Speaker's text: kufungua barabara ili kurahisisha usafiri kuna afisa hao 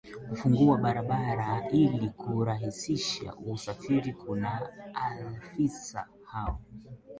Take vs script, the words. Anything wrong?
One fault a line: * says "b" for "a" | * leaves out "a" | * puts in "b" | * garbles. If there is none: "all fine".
all fine